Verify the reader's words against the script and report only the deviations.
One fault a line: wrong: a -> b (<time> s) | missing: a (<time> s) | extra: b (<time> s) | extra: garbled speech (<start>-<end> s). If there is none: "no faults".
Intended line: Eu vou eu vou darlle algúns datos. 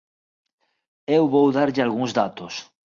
missing: eu vou (1.5 s)